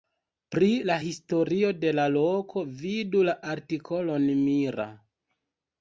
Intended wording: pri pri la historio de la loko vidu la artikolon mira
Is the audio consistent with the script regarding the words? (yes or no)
no